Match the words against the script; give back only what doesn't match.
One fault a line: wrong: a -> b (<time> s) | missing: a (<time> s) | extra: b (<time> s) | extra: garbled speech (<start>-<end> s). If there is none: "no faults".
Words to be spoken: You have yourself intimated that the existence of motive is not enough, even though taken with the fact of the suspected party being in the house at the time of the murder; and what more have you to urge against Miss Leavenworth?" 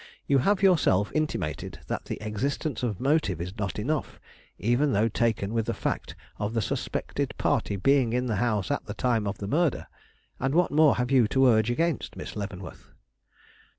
no faults